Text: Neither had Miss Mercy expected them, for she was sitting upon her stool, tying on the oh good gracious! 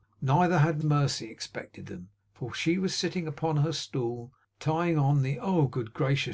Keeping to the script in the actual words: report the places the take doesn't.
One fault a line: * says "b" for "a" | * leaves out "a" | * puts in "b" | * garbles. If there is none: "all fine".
* leaves out "Miss"